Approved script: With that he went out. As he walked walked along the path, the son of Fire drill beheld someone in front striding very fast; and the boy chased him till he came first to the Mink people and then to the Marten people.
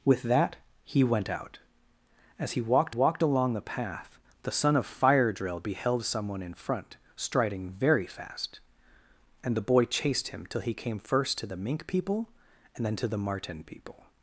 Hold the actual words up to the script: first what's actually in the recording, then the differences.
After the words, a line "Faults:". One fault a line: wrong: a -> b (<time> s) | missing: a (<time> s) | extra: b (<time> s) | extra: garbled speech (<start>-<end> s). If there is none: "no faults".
With that he went out. As he walked walked along the path, the son of Fire drill beheld someone in front striding very fast; and the boy chased him till he came first to the Mink people and then to the Marten people.
Faults:
no faults